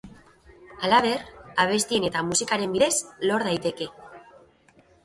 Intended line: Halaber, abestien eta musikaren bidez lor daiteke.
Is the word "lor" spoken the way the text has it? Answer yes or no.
yes